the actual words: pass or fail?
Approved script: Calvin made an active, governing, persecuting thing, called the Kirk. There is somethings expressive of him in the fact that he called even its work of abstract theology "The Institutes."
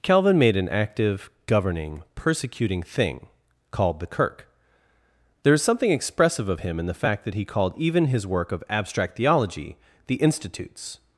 fail